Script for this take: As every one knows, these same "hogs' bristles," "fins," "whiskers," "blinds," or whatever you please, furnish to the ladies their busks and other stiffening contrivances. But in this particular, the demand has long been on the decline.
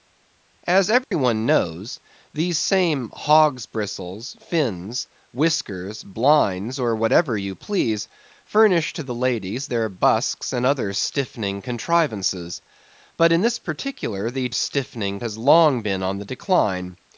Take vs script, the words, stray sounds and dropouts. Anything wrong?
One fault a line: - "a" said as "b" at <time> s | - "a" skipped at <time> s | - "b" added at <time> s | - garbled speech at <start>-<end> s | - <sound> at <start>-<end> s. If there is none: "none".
- dropout at 1.0-1.1 s
- "demand" said as "stiffening" at 14.5 s